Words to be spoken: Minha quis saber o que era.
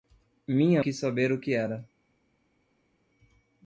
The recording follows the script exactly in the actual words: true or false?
true